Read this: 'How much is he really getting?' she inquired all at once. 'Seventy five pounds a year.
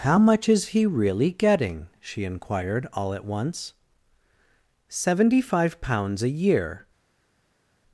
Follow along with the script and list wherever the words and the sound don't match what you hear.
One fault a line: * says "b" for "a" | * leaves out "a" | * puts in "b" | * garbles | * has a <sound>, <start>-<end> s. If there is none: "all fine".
all fine